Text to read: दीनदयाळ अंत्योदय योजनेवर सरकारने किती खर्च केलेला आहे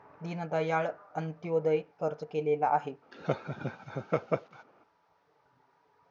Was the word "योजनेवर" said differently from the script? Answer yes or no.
yes